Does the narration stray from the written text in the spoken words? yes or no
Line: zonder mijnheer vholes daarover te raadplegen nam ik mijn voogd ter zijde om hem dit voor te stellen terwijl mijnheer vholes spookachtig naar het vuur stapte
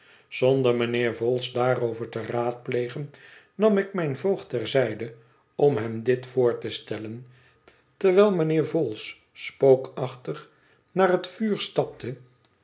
no